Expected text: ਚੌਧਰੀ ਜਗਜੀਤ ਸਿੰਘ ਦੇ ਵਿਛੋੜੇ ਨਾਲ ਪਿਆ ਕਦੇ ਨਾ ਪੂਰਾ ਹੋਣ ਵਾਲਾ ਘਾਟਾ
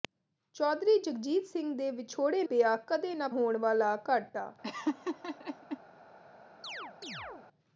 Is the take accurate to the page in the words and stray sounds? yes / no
no